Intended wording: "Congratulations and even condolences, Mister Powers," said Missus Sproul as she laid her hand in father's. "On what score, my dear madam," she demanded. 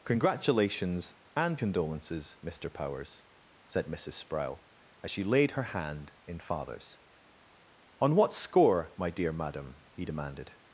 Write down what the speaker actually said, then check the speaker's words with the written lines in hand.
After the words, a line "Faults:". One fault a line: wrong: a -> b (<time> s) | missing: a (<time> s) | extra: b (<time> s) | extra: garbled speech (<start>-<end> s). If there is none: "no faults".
"Congratulations and condolences, Mister Powers," said Missus Sproul as she laid her hand in father's. "On what score, my dear madam," he demanded.
Faults:
missing: even (1.6 s)
wrong: she -> he (9.9 s)